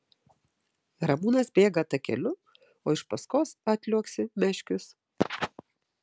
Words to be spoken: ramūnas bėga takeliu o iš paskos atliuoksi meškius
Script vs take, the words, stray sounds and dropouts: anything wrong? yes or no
no